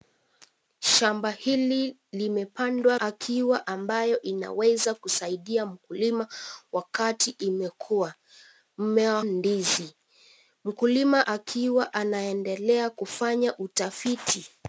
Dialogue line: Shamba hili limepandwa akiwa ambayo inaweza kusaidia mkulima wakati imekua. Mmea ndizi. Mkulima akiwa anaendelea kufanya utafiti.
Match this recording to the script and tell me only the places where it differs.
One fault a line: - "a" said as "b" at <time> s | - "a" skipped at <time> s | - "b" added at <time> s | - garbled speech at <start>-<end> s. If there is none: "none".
none